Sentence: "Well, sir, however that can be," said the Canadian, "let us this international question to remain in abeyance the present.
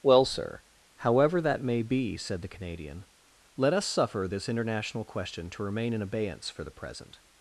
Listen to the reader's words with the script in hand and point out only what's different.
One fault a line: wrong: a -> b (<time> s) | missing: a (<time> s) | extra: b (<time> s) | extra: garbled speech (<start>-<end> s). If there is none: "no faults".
wrong: can -> may (1.6 s)
extra: suffer (3.8 s)
extra: for (6.5 s)